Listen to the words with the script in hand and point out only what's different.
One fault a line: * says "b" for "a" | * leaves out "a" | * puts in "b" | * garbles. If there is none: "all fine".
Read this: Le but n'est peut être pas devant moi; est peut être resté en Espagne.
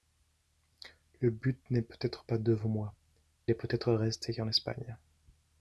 all fine